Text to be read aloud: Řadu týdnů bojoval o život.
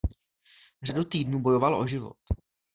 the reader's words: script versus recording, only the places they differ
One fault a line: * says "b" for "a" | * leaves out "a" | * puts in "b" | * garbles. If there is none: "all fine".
all fine